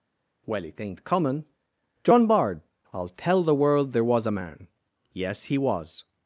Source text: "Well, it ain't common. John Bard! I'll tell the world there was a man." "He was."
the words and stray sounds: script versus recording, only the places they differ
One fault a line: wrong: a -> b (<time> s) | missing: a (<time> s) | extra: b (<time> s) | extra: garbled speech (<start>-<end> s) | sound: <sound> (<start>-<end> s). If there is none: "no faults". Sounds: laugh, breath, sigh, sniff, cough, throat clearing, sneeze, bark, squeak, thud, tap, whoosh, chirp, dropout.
extra: Yes (5.1 s)